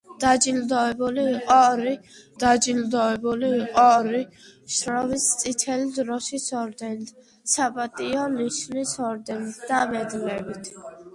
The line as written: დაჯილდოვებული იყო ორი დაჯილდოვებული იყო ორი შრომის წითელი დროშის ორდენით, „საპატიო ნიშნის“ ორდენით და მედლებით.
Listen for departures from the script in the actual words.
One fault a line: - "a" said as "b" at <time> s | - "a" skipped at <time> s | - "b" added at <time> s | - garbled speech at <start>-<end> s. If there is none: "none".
none